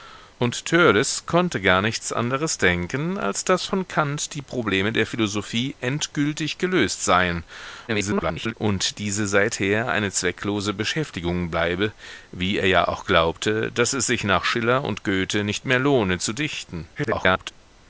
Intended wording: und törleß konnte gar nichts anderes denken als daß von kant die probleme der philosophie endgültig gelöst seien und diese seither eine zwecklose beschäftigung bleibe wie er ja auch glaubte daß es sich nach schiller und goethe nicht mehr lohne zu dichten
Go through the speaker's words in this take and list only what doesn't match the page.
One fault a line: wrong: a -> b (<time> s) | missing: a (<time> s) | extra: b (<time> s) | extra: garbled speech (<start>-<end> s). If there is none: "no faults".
extra: garbled speech (7.9-8.5 s)
extra: garbled speech (17.0-17.5 s)